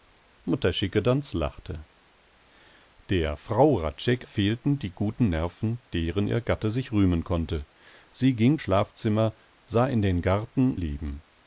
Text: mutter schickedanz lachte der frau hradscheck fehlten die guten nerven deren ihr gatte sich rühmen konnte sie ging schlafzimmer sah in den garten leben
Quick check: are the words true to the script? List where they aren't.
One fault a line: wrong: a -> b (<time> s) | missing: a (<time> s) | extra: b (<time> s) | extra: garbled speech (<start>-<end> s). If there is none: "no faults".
no faults